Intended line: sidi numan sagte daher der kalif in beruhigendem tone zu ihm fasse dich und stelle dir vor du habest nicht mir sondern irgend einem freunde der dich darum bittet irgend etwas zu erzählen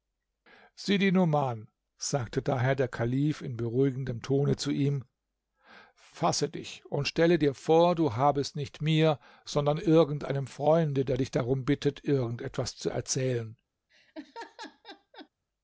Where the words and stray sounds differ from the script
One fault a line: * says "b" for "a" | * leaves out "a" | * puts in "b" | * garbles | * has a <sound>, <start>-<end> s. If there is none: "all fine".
* has a laugh, 13.9-15.3 s